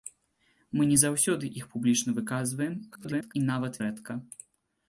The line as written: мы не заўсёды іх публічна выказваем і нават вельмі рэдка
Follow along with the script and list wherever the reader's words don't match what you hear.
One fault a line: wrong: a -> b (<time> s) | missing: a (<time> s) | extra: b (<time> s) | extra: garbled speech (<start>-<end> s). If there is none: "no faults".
extra: garbled speech (2.9-3.3 s)
missing: вельмі (3.8 s)